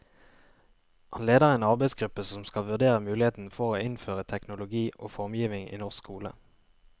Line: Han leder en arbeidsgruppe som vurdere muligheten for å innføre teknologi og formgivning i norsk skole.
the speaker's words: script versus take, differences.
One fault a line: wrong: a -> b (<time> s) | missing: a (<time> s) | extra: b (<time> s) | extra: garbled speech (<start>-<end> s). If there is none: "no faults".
extra: skal (2.5 s)